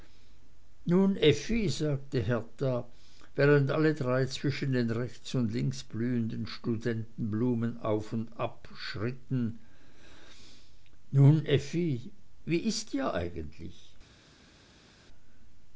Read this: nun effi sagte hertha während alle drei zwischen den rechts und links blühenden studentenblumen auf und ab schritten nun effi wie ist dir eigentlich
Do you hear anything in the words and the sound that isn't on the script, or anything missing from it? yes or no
no